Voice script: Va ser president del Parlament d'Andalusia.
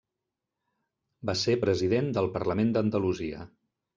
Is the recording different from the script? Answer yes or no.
no